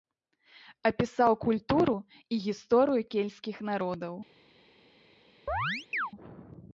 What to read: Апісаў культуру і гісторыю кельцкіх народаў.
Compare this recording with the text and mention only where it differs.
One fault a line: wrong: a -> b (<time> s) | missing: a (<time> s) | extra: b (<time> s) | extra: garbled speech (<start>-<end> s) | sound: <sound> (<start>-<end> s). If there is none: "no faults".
sound: chirp (5.5-6.1 s)